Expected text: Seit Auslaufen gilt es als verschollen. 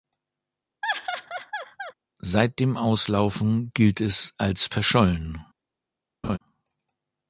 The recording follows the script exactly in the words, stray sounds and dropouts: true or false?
false